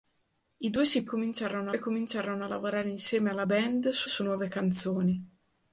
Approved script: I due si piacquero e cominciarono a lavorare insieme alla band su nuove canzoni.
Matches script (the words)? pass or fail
fail